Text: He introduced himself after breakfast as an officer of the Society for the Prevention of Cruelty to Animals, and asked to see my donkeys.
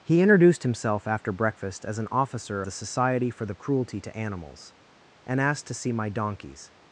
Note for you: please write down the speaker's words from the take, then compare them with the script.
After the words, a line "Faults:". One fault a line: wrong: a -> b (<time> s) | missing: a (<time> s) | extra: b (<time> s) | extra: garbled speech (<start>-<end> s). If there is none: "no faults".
He introduced himself after breakfast as an officer the Society for the Cruelty to Animals, and asked to see my donkeys.
Faults:
missing: of (2.6 s)
missing: Prevention of (3.6 s)